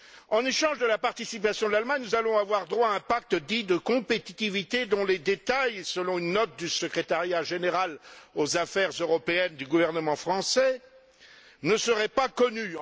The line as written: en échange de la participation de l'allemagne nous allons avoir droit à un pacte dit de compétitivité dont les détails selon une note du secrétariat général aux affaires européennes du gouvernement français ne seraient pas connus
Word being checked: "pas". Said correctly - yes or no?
yes